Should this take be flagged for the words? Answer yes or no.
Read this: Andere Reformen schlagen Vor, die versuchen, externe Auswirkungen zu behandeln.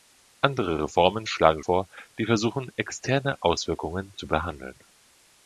no